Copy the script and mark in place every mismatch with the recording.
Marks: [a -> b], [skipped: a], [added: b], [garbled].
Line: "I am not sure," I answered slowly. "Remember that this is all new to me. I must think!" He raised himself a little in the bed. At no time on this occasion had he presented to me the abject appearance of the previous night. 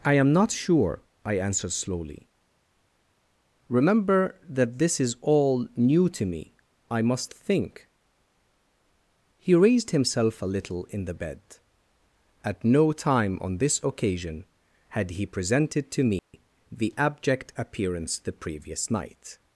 "I am not sure," I answered slowly. "Remember that this is all new to me. I must think!" He raised himself a little in the bed. At no time on this occasion had he presented to me the abject appearance [skipped: of] the previous night.